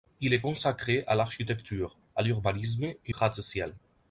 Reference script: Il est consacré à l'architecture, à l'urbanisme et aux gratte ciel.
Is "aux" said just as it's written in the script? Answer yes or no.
no